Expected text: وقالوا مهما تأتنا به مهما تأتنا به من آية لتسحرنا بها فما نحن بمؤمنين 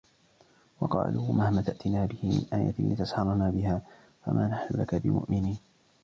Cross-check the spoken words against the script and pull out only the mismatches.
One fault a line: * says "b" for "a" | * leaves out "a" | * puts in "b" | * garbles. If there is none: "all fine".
* leaves out "مهما تأتنا به"
* puts in "لك"